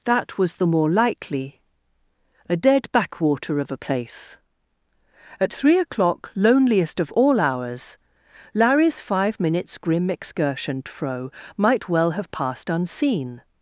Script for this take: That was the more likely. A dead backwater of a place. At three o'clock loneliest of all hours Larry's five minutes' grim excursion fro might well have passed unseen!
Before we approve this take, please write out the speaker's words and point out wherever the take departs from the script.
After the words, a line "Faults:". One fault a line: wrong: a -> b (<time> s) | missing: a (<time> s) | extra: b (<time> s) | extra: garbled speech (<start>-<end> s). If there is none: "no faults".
That was the more likely. A dead backwater of a place. At three o'clock loneliest of all hours Larry's five minutes' grim excursion fro might well have passed unseen!
Faults:
no faults